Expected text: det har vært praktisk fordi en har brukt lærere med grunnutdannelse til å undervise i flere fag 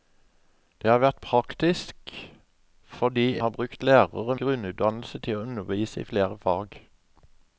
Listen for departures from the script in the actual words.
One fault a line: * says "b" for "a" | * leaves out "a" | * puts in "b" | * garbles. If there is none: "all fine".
* leaves out "en"
* leaves out "med"